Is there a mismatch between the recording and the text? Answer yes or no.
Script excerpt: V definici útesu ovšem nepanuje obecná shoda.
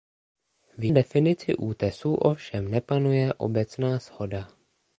no